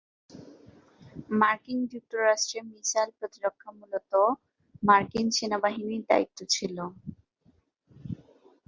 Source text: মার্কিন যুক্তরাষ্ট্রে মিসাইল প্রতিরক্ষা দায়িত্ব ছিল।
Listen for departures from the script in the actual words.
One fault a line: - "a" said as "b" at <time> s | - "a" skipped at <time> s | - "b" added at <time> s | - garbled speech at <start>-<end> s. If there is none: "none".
- "মূলত মার্কিন সেনাবাহিনীর" added at 3.8 s